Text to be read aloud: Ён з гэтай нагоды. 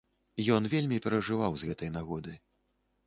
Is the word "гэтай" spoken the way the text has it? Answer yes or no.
yes